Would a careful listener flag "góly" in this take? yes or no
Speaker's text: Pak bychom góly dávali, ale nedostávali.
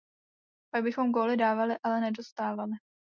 no